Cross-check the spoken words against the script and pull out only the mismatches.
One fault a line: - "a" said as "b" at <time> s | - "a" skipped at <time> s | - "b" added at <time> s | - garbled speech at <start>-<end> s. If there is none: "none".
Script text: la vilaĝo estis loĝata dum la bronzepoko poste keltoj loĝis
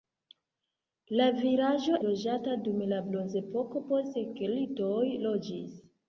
- "estis" skipped at 2.0 s